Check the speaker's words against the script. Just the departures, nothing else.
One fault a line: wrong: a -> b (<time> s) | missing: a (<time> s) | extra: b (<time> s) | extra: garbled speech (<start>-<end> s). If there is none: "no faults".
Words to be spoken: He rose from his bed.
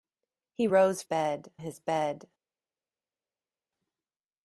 wrong: from -> bed (1.0 s)